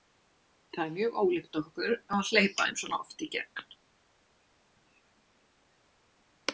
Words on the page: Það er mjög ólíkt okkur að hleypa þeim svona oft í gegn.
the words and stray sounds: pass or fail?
pass